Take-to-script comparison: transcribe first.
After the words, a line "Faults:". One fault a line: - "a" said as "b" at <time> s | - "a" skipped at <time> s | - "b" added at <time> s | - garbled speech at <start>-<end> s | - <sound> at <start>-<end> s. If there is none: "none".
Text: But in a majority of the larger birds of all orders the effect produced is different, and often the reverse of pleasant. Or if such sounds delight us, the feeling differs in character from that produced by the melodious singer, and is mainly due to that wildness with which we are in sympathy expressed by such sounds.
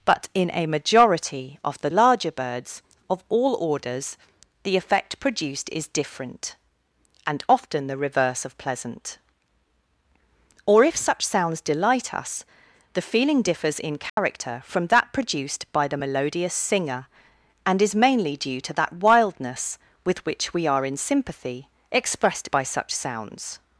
But in a majority of the larger birds of all orders the effect produced is different, and often the reverse of pleasant. Or if such sounds delight us, the feeling differs in character from that produced by the melodious singer, and is mainly due to that wildness with which we are in sympathy expressed by such sounds.
Faults:
- dropout at 14.1-14.2 s